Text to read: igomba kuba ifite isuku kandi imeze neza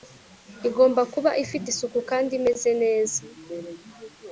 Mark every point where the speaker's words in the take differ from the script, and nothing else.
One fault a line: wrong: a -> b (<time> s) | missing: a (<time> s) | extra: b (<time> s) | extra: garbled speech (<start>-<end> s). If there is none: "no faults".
no faults